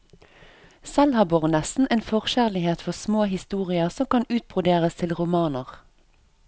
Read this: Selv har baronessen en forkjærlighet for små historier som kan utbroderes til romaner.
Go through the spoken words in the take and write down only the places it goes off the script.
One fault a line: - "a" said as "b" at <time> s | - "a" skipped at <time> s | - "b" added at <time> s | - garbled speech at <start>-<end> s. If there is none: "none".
none